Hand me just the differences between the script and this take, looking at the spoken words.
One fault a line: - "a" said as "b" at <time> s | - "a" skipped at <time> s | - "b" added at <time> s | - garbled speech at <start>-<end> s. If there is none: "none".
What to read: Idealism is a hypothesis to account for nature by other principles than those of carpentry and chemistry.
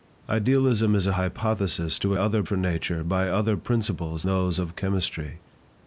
- "account" said as "other" at 2.1 s
- "than" skipped at 4.2 s
- "carpentry and" skipped at 4.8 s